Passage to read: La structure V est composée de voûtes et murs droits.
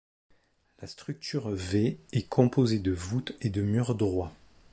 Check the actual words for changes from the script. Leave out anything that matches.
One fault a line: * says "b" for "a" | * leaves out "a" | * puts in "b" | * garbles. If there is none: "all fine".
* puts in "de"